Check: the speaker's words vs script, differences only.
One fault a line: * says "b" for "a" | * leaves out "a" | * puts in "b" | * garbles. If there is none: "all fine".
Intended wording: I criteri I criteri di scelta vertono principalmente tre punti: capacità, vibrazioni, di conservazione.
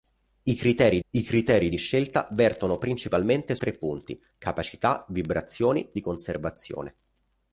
all fine